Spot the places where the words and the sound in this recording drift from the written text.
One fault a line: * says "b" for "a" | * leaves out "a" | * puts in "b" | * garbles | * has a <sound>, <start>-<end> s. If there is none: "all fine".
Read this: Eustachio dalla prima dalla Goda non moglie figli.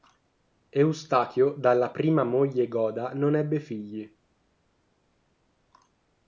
* says "moglie" for "dalla"
* says "ebbe" for "moglie"